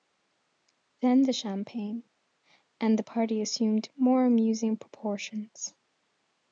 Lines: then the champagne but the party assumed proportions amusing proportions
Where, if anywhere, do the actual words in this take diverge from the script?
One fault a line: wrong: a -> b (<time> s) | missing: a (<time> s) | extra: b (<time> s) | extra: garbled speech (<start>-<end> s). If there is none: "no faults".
wrong: but -> and (2.8 s)
wrong: proportions -> more (4.0 s)